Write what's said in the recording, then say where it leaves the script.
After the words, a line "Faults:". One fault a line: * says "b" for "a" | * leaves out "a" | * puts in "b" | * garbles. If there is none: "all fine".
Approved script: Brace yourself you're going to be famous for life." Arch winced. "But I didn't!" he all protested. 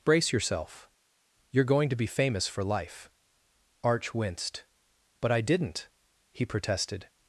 Brace yourself you're going to be famous for life." Arch winced. "But I didn't!" he protested.
Faults:
* leaves out "all"